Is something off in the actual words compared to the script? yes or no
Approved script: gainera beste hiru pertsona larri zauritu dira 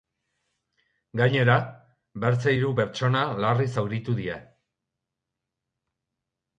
no